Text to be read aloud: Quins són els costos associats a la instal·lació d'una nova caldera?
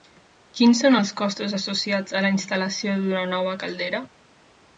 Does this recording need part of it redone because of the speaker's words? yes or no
no